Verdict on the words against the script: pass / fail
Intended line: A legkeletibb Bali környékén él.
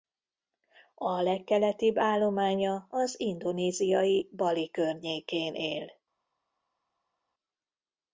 fail